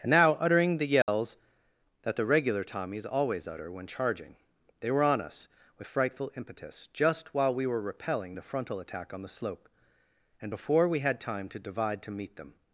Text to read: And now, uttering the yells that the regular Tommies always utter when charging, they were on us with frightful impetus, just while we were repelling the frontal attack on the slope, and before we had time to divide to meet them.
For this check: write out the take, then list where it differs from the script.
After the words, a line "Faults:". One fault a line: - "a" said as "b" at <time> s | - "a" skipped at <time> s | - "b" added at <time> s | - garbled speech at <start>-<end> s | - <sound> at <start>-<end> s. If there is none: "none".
And now, uttering the yells that the regular Tommies always utter when charging, they were on us with frightful impetus, just while we were repelling the frontal attack on the slope, and before we had time to divide to meet them.
Faults:
- dropout at 1.0-1.1 s